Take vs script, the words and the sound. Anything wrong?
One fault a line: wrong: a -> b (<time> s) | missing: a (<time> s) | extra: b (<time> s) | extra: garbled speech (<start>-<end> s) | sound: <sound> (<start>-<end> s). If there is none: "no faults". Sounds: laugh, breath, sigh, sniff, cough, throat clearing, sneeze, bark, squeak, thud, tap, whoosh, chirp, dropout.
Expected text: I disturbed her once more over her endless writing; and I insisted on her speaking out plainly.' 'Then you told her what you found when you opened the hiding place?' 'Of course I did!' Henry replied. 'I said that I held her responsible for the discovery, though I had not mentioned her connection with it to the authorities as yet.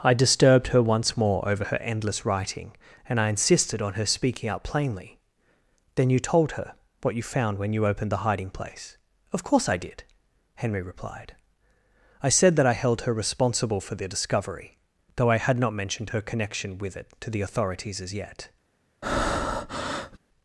sound: breath (19.0-20.2 s)